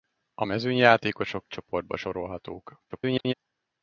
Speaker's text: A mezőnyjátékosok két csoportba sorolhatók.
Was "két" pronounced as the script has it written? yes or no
no